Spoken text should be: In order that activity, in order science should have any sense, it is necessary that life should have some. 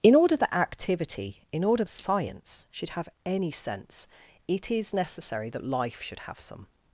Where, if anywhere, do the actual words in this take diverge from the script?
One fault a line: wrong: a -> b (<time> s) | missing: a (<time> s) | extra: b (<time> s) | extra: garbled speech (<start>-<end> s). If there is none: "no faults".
no faults